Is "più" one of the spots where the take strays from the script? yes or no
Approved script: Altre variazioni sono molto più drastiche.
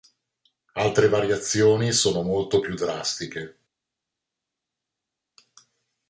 no